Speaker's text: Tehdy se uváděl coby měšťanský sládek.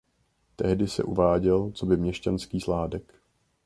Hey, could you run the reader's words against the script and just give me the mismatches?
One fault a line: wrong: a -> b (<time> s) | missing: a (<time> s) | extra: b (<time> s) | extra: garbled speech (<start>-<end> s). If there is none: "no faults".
no faults